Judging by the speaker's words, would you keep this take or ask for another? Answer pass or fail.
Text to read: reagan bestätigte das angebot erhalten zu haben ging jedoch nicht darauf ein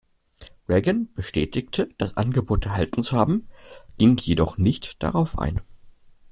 pass